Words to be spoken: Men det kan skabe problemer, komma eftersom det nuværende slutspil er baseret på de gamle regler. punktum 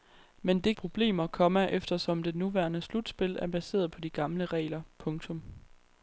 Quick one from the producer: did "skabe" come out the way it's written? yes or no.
no